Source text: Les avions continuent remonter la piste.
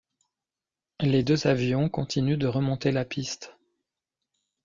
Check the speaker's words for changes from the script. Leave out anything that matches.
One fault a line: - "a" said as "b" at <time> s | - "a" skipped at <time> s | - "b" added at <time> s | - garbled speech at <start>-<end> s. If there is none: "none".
- "deux" added at 1.2 s
- "de" added at 2.4 s